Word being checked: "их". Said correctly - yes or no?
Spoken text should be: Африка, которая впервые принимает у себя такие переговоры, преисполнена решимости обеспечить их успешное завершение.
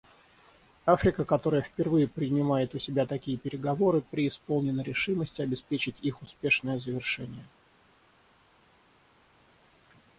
yes